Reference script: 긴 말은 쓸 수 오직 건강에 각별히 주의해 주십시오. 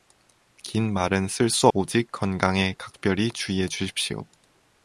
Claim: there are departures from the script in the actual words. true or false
false